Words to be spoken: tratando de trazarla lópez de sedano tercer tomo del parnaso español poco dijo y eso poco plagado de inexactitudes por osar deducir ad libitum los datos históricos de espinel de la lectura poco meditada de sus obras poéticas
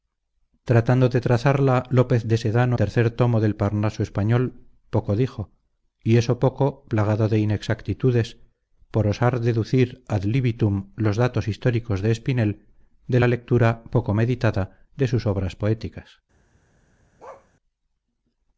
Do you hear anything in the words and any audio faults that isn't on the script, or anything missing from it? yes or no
yes